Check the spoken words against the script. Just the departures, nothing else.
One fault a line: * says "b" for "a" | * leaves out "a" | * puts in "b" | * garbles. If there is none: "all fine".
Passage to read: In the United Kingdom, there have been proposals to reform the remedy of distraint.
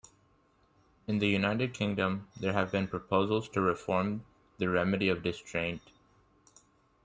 all fine